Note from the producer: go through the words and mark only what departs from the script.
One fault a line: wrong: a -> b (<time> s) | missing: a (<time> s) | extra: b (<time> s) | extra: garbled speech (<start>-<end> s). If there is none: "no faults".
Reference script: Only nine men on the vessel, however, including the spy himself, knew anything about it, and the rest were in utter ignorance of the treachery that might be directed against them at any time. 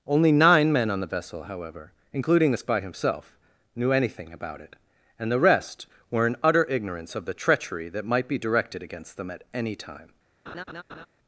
no faults